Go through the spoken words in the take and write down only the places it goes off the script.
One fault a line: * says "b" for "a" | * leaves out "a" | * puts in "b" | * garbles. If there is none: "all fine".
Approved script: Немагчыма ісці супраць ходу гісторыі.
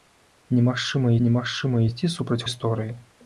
* puts in "немагчыма"
* leaves out "ходу"